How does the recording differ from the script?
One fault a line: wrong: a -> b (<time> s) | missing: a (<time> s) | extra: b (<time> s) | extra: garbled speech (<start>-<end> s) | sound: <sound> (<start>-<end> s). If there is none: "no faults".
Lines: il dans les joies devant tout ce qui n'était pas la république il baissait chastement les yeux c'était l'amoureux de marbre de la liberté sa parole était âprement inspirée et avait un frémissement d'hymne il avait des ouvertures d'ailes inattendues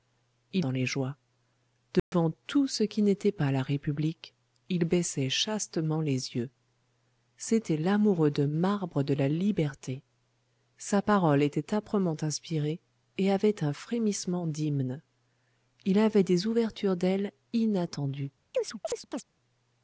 sound: dropout (2.0-2.1 s)
sound: chirp (18.5-19.2 s)